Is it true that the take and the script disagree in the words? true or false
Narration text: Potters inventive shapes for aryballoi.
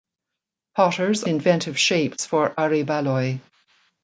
false